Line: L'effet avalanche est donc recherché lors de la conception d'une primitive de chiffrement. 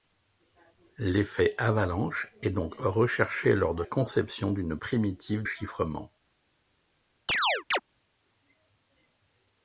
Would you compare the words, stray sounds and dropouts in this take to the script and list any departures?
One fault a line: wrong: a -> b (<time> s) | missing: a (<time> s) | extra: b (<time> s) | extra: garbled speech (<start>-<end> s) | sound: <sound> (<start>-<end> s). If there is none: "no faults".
missing: la (3.8 s)
missing: de (5.4 s)
sound: chirp (7.3-7.8 s)